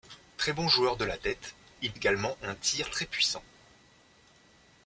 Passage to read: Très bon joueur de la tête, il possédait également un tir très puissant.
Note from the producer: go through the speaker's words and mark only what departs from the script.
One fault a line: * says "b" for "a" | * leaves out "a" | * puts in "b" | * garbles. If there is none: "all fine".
* leaves out "possédait"